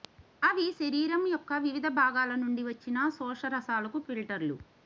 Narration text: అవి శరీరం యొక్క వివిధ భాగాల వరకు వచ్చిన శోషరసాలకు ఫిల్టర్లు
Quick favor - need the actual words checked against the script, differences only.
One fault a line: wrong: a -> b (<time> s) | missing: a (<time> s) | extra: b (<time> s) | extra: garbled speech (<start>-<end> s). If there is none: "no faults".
wrong: వరకు -> నుండి (2.3 s)